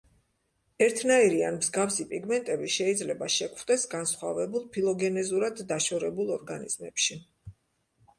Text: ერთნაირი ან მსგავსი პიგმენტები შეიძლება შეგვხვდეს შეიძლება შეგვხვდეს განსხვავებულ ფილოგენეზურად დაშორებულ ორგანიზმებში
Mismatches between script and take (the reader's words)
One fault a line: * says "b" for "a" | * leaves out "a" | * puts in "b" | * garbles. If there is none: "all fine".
* leaves out "შეიძლება შეგვხვდეს"